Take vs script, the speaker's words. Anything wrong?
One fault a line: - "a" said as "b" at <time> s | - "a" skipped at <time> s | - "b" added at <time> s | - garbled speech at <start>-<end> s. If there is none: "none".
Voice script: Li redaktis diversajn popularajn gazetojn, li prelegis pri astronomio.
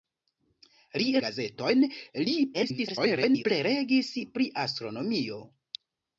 - "redaktis diversajn popularajn" skipped at 1.1 s
- garbled speech at 2.5-3.4 s